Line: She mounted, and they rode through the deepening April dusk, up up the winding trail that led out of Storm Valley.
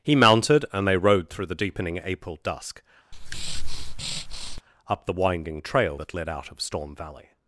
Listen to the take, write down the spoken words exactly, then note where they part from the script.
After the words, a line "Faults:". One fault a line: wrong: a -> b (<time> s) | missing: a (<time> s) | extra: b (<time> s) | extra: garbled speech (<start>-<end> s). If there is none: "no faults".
He mounted, and they rode through the deepening April dusk, up the winding trail that led out of Storm Valley.
Faults:
wrong: She -> He (0.0 s)
missing: up (5.1 s)